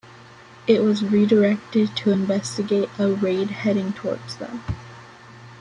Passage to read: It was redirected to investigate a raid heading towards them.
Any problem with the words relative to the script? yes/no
no